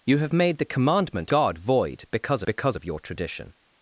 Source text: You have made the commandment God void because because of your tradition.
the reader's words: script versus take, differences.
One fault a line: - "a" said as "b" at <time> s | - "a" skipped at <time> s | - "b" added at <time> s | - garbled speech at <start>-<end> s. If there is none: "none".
none